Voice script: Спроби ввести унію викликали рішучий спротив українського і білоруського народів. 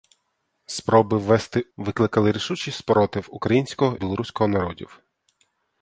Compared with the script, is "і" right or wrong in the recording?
wrong